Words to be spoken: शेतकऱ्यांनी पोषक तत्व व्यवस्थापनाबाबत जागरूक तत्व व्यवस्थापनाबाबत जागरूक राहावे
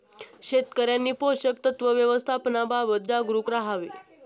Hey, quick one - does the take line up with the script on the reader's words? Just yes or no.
no